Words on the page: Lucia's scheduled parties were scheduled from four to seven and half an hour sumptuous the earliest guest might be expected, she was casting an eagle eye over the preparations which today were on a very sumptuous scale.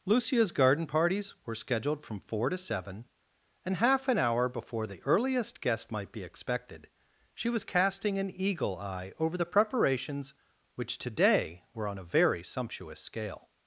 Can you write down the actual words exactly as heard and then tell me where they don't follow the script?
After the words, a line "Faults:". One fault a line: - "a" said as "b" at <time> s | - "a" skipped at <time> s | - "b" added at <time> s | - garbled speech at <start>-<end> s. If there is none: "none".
Lucia's garden parties were scheduled from four to seven and half an hour before the earliest guest might be expected, she was casting an eagle eye over the preparations which today were on a very sumptuous scale.
Faults:
- "scheduled" said as "garden" at 0.5 s
- "sumptuous" said as "before" at 4.5 s